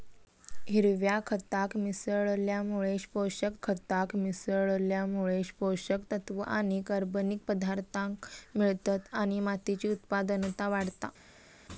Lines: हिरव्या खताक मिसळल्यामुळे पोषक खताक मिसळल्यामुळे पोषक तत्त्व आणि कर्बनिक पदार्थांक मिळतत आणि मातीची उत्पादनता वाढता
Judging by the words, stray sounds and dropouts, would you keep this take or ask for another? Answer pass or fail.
pass